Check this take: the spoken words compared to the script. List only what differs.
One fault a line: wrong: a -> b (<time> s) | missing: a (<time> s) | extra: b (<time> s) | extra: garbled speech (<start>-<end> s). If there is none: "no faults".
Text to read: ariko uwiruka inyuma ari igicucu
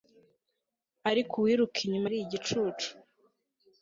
no faults